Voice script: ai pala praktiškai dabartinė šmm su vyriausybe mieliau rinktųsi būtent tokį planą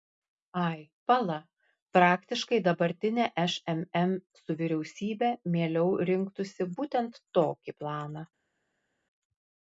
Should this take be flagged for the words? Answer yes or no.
no